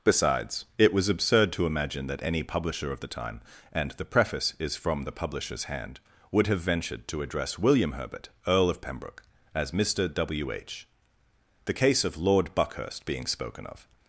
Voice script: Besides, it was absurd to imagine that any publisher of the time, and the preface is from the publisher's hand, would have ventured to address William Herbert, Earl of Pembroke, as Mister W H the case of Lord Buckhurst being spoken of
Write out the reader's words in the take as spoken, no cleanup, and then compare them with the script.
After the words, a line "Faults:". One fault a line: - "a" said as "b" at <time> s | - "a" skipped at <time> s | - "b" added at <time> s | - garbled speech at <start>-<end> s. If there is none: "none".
Besides, it was absurd to imagine that any publisher of the time, and the preface is from the publisher's hand, would have ventured to address William Herbert, Earl of Pembroke, as Mister W H the case of Lord Buckhurst being spoken of
Faults:
none